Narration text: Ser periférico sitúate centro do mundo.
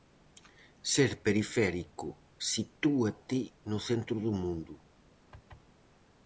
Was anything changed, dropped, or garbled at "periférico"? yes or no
no